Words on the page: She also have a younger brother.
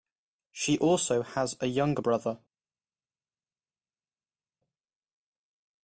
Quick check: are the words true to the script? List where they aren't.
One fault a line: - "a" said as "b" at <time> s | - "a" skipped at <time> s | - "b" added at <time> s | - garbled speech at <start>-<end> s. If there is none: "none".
- "have" said as "has" at 1.2 s